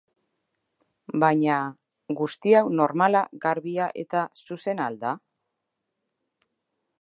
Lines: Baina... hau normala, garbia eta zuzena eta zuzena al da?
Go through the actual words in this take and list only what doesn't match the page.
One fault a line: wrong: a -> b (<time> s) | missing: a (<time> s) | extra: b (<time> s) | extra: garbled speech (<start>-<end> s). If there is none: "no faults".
extra: guzti (2.2 s)
missing: eta zuzena (4.9 s)